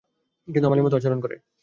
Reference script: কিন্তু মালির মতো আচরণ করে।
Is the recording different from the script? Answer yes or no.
no